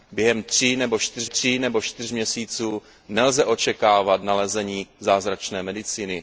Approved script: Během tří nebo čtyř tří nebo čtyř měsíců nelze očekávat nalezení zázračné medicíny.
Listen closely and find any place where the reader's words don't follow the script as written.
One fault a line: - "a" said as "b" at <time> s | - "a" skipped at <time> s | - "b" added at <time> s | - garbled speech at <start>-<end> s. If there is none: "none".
none